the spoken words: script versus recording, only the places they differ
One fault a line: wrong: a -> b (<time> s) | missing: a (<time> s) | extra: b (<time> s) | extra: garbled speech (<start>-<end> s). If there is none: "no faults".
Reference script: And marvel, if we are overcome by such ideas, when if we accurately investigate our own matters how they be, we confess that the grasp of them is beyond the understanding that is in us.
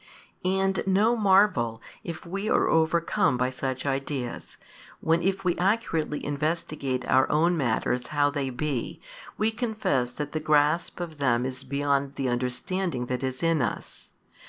extra: no (0.8 s)